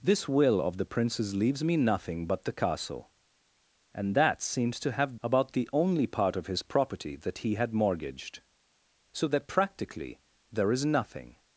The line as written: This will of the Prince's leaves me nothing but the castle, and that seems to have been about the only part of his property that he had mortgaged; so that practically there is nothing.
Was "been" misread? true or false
true